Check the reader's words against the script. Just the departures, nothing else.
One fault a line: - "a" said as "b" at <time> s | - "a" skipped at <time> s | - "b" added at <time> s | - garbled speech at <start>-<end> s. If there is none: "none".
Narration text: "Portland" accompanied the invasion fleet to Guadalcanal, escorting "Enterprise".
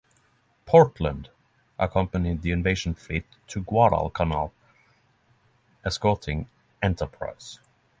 none